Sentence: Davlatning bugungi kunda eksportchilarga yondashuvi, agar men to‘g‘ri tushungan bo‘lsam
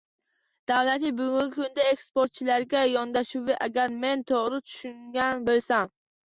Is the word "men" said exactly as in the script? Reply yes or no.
yes